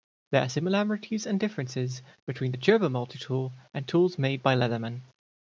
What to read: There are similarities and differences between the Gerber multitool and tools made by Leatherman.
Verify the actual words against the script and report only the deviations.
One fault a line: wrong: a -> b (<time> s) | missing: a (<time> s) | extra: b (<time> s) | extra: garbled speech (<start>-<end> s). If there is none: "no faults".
no faults